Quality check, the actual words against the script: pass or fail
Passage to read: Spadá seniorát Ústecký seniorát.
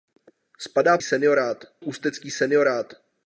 pass